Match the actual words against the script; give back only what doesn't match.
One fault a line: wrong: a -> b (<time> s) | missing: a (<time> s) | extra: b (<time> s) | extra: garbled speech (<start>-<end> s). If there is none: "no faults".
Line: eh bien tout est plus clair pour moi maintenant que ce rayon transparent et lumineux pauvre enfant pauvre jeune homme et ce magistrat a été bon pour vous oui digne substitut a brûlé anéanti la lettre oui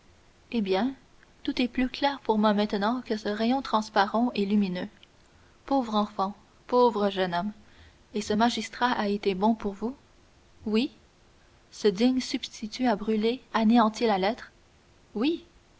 extra: ce (11.7 s)